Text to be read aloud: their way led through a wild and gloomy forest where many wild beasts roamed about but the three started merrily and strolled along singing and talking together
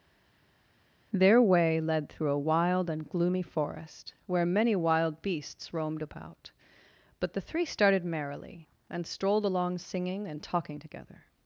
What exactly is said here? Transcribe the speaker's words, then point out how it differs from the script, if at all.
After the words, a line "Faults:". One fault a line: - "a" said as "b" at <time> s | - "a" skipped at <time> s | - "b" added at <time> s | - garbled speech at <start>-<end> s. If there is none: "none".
their way led through a wild and gloomy forest where many wild beasts roamed about but the three started merrily and strolled along singing and talking together
Faults:
none